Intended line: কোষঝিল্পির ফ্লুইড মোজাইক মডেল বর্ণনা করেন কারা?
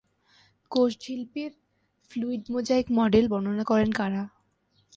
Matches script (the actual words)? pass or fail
pass